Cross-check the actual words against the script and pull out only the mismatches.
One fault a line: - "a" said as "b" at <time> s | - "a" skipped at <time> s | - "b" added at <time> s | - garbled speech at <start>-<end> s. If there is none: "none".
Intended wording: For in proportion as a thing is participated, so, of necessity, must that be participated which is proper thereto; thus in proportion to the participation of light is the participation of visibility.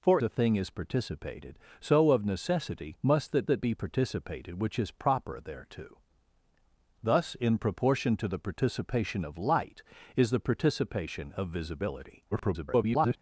- "in proportion as" skipped at 0.2 s
- "that" added at 3.5 s
- garbled speech at 12.3-13.2 s